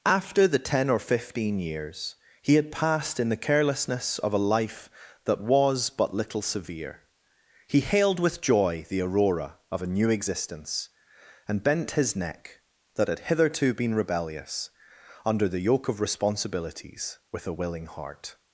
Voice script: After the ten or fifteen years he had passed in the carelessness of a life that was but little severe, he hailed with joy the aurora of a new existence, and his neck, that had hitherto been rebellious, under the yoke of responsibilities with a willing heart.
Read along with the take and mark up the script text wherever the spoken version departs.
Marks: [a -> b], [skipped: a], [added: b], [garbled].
After the ten or fifteen years he had passed in the carelessness of a life that was but little severe, he hailed with joy the aurora of a new existence, and [added: bent] his neck, that had hitherto been rebellious, under the yoke of responsibilities with a willing heart.